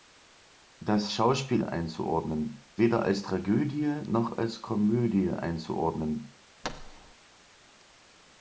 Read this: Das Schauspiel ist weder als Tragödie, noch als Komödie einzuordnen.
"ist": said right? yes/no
no